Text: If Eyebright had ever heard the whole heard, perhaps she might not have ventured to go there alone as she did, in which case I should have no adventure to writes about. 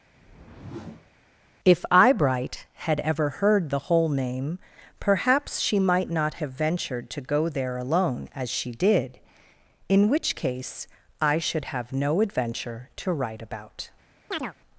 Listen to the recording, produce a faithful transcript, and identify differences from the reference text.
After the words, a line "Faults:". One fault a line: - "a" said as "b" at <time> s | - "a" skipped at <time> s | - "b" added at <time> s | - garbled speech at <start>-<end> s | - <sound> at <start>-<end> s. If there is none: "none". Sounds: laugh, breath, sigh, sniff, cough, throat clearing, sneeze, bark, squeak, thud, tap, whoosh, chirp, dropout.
If Eyebright had ever heard the whole name, perhaps she might not have ventured to go there alone as she did, in which case I should have no adventure to write about.
Faults:
- whoosh at 0.1-1.1 s
- "heard" said as "name" at 4.1 s
- "writes" said as "write" at 13.1 s
- chirp at 14.3-14.5 s